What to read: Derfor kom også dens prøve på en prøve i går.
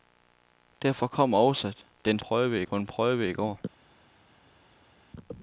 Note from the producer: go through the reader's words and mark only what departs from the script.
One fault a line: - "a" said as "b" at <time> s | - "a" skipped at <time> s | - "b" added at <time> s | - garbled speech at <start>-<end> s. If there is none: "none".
none